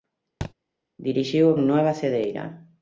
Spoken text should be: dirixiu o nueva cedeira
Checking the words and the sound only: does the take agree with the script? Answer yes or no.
no